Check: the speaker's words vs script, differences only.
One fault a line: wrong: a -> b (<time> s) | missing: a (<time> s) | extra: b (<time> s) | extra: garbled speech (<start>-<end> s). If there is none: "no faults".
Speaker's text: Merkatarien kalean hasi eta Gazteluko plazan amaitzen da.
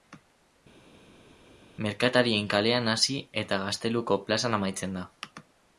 no faults